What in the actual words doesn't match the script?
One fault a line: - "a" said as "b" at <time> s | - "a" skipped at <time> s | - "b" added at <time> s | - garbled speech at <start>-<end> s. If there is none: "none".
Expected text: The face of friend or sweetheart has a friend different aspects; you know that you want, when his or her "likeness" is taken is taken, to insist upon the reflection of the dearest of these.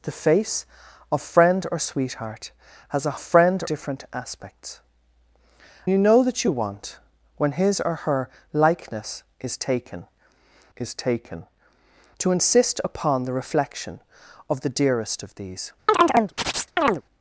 none